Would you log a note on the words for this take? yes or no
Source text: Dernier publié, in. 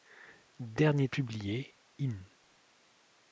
no